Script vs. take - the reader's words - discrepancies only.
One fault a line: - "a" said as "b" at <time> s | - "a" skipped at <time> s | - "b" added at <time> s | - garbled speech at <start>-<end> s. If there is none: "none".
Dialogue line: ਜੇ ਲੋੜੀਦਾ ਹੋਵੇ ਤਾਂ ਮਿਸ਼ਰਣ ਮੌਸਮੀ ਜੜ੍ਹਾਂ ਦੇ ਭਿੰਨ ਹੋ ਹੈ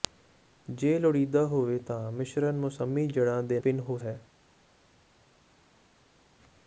none